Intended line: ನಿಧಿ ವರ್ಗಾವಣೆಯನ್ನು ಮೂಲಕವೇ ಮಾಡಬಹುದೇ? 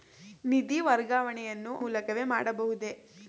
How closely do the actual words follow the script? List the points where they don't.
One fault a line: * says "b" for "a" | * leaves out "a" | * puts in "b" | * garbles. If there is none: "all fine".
all fine